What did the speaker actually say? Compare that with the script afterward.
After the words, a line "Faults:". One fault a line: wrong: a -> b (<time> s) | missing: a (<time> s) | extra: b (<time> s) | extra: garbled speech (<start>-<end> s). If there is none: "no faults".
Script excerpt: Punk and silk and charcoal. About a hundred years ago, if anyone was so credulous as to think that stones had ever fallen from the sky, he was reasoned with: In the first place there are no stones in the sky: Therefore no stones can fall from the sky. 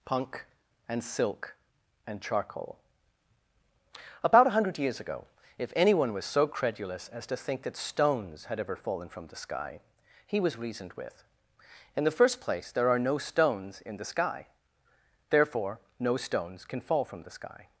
Punk and silk and charcoal. About a hundred years ago, if anyone was so credulous as to think that stones had ever fallen from the sky, he was reasoned with: In the first place there are no stones in the sky: Therefore no stones can fall from the sky.
Faults:
no faults